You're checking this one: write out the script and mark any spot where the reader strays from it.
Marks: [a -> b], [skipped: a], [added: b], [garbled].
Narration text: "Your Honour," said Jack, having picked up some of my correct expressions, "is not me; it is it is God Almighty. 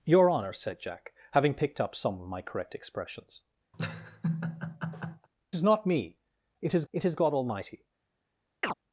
"Your Honour," said Jack, having picked up some of my correct expressions, "is not me; it is it is God Almighty.